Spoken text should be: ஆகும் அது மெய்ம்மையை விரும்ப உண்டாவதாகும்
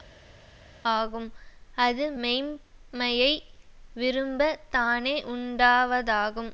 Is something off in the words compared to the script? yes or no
yes